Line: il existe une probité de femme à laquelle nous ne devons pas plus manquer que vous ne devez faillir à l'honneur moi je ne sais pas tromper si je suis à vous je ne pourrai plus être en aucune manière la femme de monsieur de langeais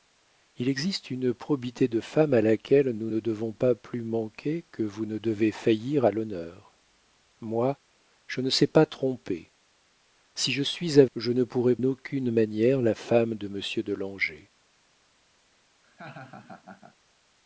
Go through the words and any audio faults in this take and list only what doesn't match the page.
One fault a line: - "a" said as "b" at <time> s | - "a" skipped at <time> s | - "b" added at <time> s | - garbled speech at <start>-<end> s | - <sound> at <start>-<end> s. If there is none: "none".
- "vous" skipped at 11.0 s
- "plus être en" skipped at 11.8 s
- laugh at 15.8-17.0 s